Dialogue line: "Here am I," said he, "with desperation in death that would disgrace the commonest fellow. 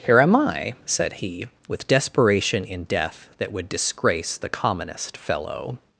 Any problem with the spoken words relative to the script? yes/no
no